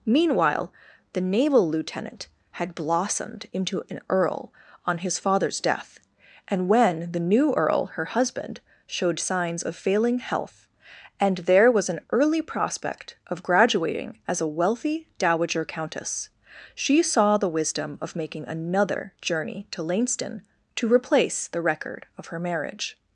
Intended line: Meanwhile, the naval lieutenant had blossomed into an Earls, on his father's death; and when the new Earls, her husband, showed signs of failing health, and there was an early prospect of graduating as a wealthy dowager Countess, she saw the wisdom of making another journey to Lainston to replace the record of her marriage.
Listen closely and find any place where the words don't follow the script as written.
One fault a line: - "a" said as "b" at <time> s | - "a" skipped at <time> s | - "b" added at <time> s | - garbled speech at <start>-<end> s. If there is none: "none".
- "Earls" said as "Earl" at 4.1 s
- "Earls" said as "Earl" at 7.5 s